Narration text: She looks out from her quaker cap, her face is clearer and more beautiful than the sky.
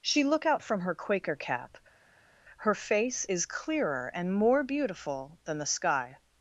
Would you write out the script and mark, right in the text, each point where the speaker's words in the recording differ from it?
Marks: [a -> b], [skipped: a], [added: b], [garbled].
She [looks -> look] out from her quaker cap, her face is clearer and more beautiful than the sky.